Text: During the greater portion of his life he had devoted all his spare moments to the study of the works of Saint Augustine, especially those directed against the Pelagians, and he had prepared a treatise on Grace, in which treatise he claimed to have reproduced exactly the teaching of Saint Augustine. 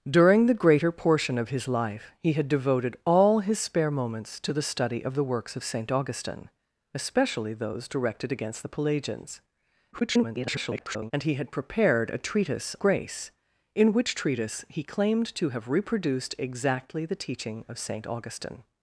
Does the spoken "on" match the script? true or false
false